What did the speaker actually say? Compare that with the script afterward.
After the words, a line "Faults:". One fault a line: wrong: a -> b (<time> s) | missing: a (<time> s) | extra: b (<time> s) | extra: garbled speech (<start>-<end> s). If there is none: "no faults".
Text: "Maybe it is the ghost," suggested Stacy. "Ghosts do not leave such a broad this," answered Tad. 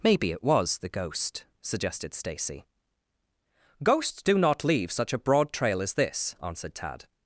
"Maybe it was the ghost," suggested Stacy. "Ghosts do not leave such a broad trail as this," answered Tad.
Faults:
wrong: is -> was (0.4 s)
extra: trail as (5.5 s)